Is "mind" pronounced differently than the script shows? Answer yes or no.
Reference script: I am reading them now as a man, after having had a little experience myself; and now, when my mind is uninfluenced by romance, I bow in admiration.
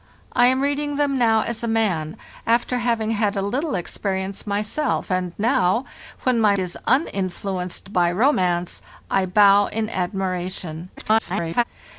yes